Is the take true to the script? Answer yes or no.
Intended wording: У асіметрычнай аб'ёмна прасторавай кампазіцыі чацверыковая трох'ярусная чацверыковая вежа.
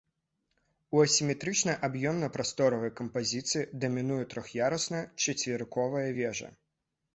no